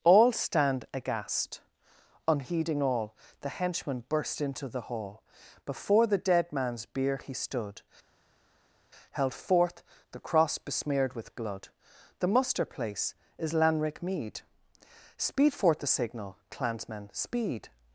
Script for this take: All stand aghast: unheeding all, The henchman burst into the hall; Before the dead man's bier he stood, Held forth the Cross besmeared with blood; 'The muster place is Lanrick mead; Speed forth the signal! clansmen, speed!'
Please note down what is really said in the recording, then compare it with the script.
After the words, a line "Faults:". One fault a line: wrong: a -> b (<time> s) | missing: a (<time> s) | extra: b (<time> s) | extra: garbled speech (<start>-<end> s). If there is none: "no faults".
All stand aghast: unheeding all, The henchman burst into the hall; Before the dead man's bier he stood, Held forth the Cross besmeared with blood; 'The muster place is Lanrick mead; Speed forth the signal! clansmen, speed!'
Faults:
no faults